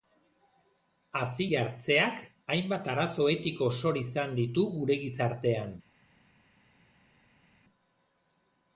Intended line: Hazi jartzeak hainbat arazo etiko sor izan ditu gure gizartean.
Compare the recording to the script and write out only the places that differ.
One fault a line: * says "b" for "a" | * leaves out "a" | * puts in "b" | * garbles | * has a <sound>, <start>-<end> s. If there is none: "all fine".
all fine